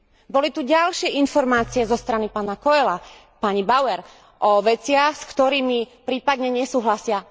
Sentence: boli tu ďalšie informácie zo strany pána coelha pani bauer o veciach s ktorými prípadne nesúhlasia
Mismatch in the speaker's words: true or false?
false